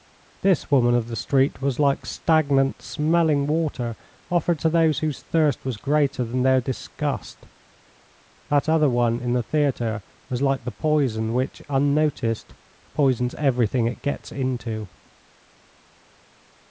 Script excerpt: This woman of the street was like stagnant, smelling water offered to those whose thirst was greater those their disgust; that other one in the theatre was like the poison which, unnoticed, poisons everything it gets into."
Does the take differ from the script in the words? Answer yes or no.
yes